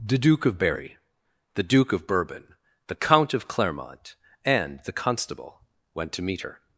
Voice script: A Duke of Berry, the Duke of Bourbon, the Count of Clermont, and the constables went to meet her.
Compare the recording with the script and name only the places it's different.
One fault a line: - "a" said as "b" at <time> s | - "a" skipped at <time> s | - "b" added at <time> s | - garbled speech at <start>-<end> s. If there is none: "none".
- "A" said as "The" at 0.0 s
- "constables" said as "constable" at 4.9 s